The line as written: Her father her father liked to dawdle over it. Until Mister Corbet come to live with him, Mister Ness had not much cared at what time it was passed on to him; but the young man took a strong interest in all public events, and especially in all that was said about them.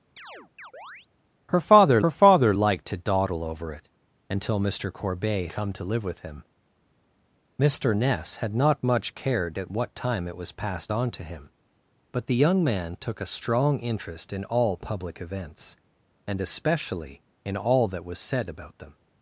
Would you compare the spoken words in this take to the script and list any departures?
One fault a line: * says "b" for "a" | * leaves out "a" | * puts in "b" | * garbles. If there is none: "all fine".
all fine